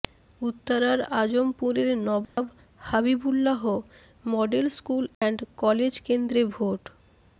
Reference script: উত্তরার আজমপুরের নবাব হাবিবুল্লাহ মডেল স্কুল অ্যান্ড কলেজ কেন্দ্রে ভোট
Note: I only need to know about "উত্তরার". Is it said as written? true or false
true